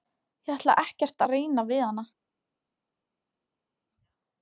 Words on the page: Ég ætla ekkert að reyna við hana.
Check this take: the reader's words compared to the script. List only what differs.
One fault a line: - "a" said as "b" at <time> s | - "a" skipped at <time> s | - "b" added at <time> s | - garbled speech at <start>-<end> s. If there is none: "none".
none